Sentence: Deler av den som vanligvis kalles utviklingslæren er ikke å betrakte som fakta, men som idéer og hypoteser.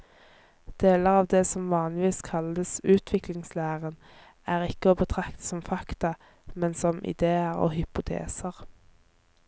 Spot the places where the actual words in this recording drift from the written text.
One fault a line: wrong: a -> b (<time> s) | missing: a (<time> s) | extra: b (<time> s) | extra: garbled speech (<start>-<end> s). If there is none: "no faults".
wrong: den -> det (1.3 s)